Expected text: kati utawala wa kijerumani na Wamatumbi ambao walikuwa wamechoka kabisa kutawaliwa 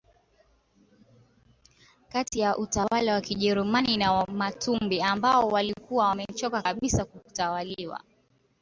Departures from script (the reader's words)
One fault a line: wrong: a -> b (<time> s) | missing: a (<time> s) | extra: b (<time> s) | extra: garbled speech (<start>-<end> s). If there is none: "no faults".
extra: ya (2.4 s)